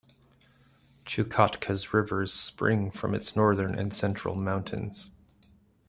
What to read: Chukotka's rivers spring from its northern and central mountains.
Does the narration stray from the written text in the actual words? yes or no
no